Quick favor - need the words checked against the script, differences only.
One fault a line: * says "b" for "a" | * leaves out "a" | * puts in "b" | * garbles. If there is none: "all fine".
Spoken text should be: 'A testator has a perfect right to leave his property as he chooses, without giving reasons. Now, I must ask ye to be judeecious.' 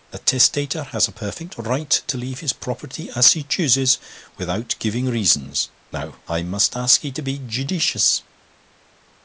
all fine